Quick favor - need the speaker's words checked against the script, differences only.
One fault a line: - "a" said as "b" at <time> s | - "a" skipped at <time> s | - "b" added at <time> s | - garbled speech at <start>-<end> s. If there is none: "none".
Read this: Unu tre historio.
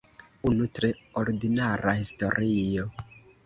- "ordinara" added at 1.2 s